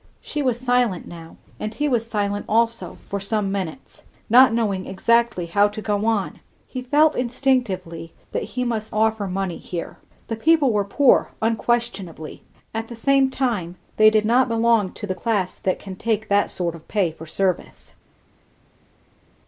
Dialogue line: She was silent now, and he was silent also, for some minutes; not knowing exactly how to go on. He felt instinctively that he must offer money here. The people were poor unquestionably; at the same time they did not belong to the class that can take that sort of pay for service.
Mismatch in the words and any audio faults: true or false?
false